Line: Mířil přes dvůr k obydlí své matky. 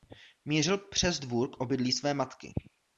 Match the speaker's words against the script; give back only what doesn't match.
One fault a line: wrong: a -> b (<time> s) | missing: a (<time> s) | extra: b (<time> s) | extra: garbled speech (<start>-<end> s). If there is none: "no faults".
no faults